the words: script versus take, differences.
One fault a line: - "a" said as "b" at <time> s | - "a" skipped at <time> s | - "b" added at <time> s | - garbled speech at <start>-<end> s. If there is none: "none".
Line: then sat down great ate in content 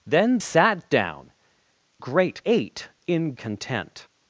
none